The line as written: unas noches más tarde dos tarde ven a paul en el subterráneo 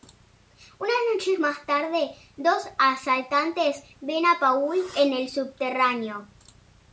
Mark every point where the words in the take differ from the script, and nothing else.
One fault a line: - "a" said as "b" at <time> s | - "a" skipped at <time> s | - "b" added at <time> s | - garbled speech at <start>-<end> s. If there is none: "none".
- "tarde" said as "asaltantes" at 2.8 s